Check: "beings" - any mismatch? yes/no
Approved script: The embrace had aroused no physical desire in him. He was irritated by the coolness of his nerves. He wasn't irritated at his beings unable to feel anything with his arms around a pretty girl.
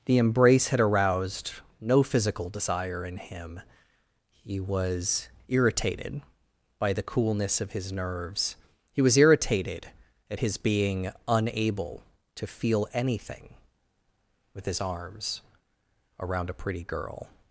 yes